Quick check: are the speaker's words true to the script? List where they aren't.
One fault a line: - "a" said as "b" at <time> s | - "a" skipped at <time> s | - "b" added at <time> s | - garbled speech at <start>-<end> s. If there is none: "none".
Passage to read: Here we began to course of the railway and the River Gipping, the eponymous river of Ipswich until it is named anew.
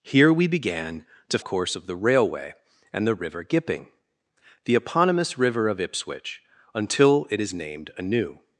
none